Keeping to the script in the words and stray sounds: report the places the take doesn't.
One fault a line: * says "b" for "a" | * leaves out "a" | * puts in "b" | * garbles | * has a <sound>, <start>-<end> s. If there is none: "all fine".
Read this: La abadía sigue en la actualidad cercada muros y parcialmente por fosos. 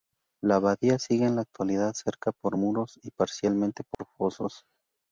* puts in "por"
* has a dropout, 3.9-4.0 s